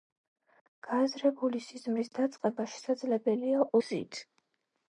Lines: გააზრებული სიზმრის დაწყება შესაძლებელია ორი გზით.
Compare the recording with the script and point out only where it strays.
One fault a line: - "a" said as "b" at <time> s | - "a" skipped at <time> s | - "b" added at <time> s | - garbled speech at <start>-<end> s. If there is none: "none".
- "ორი" skipped at 3.7 s